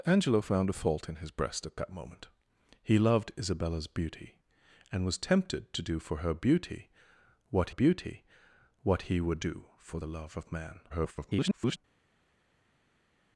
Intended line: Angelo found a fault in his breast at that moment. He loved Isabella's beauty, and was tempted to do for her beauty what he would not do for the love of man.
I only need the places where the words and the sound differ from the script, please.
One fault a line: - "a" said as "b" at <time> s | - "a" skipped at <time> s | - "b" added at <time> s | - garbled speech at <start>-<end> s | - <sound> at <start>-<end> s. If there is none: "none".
- "beauty what" added at 7.7 s
- "not" skipped at 9.4 s
- garbled speech at 10.9-11.8 s